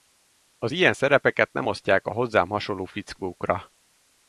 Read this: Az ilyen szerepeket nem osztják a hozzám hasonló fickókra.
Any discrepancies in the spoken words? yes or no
no